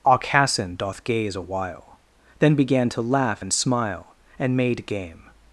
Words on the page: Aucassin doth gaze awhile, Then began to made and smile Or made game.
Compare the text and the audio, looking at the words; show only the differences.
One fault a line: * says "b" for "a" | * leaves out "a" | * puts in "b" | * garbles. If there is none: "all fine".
* says "laugh" for "made"
* says "And" for "Or"